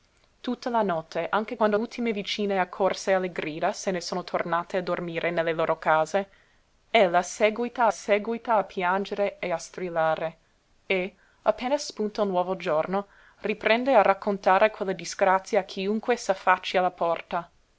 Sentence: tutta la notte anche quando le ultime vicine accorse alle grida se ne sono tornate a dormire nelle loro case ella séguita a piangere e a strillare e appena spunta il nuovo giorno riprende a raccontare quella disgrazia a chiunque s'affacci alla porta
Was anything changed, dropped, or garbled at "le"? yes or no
yes